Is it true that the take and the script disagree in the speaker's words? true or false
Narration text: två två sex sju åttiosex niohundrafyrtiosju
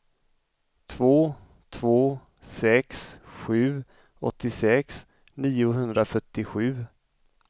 false